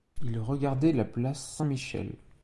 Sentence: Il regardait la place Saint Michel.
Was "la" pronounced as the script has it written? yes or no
yes